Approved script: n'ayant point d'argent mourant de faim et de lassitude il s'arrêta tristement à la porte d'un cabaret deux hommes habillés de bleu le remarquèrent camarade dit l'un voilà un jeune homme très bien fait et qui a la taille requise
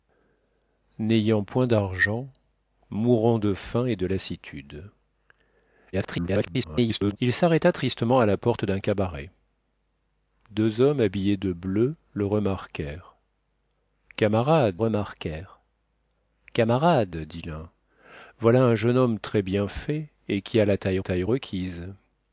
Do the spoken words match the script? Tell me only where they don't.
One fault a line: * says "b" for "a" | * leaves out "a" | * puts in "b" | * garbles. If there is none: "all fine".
* garbles
* puts in "remarquèrent camarade"
* puts in "taille"